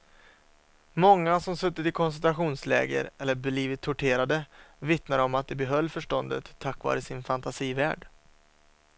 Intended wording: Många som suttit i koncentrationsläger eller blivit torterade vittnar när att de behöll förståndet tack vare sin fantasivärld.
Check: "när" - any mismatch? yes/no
yes